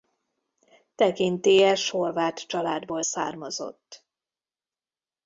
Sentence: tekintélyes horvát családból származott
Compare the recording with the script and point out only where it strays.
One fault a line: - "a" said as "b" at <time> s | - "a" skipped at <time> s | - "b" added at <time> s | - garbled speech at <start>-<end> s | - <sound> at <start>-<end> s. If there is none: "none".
none